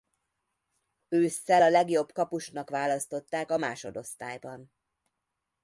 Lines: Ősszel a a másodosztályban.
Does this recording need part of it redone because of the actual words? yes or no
yes